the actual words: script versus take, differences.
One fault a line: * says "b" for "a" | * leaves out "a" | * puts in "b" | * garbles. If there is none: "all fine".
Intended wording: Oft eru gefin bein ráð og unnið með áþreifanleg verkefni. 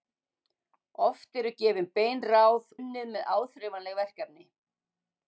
* leaves out "og"